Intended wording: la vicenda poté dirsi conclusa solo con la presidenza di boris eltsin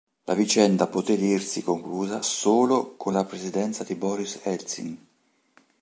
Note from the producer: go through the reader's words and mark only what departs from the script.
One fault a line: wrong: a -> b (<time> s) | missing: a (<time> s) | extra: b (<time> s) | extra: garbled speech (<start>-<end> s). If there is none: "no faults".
no faults